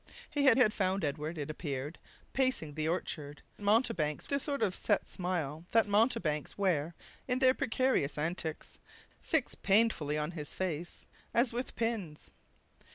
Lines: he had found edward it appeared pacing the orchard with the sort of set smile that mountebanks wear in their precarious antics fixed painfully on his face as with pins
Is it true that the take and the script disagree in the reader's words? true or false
true